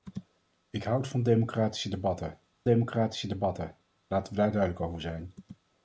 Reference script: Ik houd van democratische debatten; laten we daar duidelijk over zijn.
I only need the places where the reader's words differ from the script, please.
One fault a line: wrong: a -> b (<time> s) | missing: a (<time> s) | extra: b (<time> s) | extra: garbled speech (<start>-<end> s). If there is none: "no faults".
extra: democratische debatten (2.6 s)